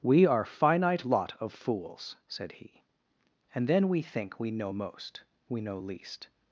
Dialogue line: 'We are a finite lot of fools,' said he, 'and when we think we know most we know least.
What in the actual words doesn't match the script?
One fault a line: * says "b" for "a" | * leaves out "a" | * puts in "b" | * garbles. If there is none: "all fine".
* leaves out "a"
* says "then" for "when"